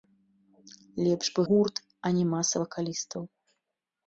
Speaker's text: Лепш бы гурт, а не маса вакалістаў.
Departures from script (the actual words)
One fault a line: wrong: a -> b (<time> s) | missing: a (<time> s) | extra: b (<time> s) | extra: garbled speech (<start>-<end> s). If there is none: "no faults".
no faults